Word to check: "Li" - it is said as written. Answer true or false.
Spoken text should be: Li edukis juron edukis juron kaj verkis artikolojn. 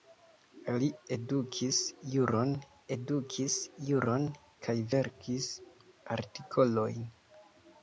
true